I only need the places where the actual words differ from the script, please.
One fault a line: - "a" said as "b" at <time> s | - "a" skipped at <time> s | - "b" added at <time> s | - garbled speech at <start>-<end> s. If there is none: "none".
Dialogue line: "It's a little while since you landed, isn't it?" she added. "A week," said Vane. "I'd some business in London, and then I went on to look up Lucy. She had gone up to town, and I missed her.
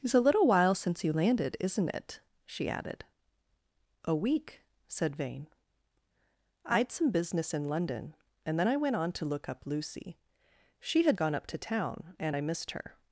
none